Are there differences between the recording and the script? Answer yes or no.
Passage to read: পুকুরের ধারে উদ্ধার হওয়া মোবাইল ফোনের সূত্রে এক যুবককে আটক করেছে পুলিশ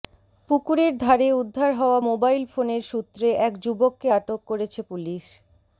no